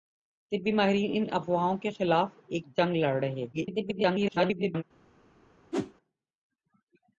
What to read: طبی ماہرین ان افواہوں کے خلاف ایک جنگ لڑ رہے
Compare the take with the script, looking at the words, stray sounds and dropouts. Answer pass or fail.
fail